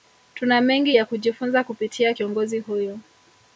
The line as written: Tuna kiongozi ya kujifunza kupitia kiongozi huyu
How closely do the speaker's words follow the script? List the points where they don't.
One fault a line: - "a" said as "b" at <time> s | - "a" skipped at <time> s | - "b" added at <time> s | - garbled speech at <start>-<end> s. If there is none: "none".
- "kiongozi" said as "mengi" at 0.6 s